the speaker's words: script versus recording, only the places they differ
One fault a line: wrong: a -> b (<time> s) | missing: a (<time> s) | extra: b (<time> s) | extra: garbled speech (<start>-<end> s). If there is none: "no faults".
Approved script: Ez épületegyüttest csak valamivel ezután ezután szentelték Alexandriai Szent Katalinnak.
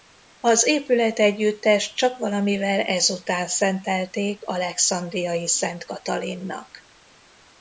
wrong: Ez -> Az (0.4 s)
missing: ezután (3.5 s)